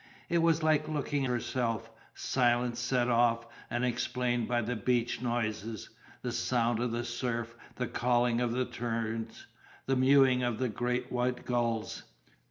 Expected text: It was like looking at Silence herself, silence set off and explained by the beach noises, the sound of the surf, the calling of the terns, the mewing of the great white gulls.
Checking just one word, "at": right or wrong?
wrong